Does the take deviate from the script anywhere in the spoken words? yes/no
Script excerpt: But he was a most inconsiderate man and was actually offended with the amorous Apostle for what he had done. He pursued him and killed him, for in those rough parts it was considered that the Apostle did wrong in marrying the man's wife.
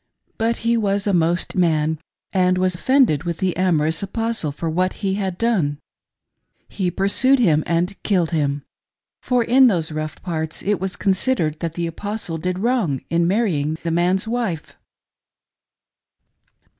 yes